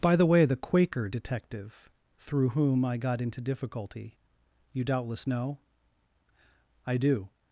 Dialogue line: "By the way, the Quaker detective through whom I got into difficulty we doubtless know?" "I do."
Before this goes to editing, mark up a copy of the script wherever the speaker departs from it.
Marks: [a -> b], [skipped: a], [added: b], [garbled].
"By the way, the Quaker detective through whom I got into difficulty [we -> you] doubtless know?" "I do."